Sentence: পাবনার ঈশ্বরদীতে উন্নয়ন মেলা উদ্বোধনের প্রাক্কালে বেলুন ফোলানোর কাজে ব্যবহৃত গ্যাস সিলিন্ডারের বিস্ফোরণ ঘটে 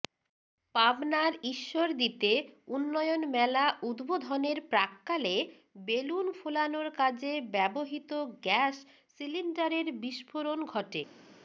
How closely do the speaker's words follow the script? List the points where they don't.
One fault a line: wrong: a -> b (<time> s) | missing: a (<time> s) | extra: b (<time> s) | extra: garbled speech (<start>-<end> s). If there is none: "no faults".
no faults